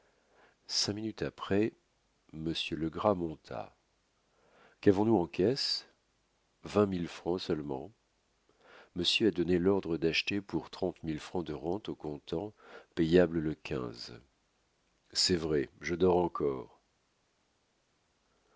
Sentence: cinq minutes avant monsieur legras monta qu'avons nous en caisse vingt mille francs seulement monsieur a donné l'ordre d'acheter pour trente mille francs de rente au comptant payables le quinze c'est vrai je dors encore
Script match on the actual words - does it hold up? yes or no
no